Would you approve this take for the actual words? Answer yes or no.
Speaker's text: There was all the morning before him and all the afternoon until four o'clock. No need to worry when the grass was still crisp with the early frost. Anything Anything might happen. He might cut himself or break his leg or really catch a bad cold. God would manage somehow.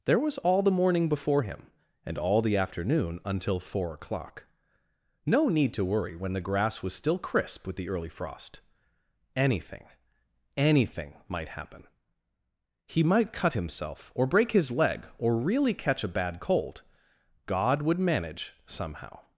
yes